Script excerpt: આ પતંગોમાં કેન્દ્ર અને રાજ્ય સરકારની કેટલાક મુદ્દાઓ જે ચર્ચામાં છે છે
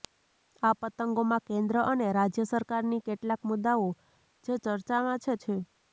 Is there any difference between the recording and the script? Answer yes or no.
no